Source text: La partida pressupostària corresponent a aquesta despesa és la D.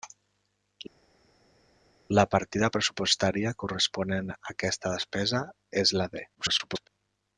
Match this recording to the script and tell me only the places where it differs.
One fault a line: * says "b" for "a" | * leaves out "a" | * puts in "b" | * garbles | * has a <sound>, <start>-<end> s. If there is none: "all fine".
* garbles